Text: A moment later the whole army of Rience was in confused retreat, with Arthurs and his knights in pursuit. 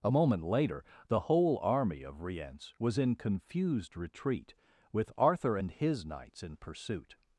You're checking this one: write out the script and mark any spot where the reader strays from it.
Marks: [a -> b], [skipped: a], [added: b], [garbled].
A moment later the whole army of Rience was in confused retreat, with [Arthurs -> Arthur] and his knights in pursuit.